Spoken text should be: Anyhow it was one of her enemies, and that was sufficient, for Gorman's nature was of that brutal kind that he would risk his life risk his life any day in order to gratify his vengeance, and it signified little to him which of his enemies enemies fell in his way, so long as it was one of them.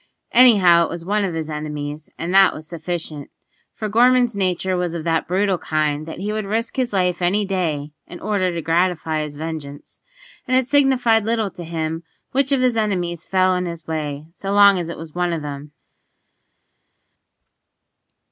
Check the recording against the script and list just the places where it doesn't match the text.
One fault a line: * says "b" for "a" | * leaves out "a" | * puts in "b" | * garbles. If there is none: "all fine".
* says "his" for "her"
* leaves out "risk his life"
* leaves out "enemies"